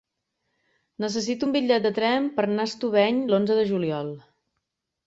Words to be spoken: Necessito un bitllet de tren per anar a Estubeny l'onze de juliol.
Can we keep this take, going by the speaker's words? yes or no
yes